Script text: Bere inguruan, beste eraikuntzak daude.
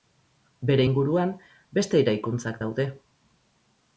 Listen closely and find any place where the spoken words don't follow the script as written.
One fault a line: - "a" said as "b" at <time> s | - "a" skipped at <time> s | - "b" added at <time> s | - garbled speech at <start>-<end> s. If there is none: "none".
none